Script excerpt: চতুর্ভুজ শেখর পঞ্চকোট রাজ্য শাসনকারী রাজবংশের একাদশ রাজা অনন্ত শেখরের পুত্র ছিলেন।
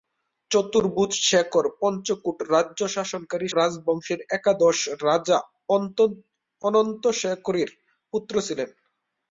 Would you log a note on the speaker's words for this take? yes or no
no